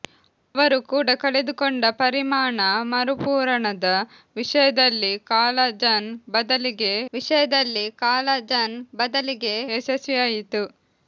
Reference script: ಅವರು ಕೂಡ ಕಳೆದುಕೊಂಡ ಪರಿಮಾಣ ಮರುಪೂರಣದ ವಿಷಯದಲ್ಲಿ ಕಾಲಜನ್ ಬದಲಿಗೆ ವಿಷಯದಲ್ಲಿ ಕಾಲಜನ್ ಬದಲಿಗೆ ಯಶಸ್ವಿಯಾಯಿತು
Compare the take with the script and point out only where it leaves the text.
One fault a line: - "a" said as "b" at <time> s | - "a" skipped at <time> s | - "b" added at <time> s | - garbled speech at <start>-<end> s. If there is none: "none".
none